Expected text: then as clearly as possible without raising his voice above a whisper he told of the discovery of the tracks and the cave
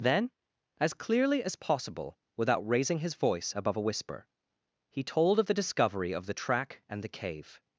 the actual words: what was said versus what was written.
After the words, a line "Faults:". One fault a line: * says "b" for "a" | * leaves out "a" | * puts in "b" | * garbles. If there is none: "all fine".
then as clearly as possible without raising his voice above a whisper he told of the discovery of the track and the cave
Faults:
* says "track" for "tracks"